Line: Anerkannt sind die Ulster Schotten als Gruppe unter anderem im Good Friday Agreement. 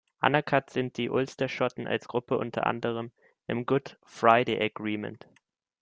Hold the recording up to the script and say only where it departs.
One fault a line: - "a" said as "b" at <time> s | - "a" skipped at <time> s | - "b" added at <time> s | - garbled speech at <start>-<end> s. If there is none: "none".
none